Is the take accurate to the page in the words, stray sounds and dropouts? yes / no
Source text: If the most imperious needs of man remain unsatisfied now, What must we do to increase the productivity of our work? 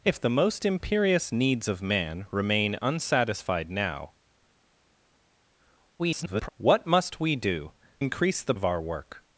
no